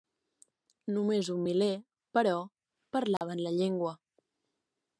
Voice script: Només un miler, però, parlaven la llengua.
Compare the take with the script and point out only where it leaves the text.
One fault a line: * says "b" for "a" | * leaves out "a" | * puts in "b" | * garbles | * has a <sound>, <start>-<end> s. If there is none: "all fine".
* has a dropout, 3.2-3.2 s